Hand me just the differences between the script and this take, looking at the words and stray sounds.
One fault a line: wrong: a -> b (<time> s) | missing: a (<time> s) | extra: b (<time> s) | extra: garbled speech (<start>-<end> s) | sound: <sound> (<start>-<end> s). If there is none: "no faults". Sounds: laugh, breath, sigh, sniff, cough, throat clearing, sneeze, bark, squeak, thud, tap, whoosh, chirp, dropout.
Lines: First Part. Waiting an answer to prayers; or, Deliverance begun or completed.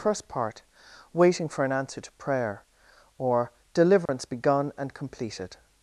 extra: for (1.5 s)
wrong: prayers -> prayer (2.1 s)
sound: dropout (4.1-4.1 s)
wrong: or -> and (4.8 s)